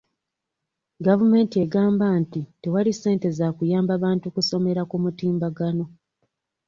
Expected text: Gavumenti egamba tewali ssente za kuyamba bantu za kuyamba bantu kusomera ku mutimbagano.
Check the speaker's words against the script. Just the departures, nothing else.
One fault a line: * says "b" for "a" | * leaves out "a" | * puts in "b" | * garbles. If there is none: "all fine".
* puts in "nti"
* leaves out "za kuyamba bantu"